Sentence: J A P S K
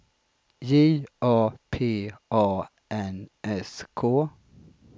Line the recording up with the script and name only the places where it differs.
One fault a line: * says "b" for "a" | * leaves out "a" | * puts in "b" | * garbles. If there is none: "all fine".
* puts in "A N"